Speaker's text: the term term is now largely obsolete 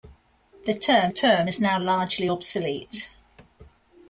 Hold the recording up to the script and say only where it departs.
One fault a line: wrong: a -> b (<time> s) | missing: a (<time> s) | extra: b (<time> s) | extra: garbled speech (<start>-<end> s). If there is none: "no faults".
no faults